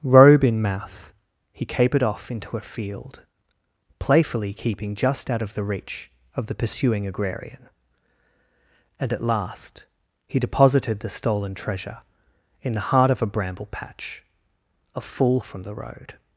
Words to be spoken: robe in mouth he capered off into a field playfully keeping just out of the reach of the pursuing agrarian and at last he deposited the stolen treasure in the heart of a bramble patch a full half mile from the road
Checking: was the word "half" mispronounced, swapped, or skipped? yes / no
yes